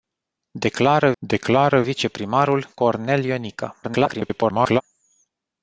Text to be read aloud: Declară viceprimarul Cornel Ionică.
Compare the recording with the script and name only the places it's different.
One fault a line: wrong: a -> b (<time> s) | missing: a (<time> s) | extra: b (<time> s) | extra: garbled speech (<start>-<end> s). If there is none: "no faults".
extra: declară (1.2 s)
extra: garbled speech (3.8-4.8 s)